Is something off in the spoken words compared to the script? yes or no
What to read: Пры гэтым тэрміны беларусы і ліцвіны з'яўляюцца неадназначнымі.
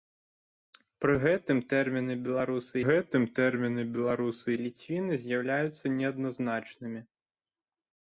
yes